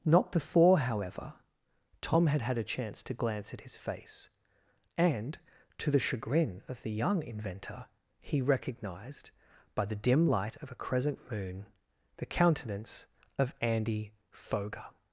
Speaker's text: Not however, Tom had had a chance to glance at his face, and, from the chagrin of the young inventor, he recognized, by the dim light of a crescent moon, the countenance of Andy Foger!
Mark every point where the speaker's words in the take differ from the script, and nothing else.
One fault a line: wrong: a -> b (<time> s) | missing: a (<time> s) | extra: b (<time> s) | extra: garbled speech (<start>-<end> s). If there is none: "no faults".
extra: before (0.3 s)
wrong: from -> to (5.8 s)